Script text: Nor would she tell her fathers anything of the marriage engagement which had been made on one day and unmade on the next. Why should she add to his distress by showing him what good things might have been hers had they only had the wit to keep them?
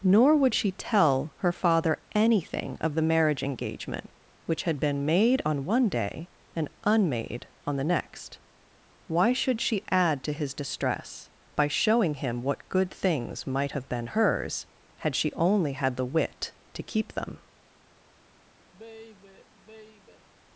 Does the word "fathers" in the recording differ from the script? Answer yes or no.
yes